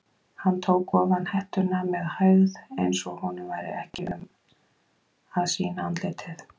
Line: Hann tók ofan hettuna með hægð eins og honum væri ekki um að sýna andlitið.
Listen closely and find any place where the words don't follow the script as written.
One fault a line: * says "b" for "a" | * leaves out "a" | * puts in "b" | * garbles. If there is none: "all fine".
all fine